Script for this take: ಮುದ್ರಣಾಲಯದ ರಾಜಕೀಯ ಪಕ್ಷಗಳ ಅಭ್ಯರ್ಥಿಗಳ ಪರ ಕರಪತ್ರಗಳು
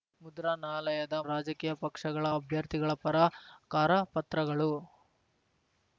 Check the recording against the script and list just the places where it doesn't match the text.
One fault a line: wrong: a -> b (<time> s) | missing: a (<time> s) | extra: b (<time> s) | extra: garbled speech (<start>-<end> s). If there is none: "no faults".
no faults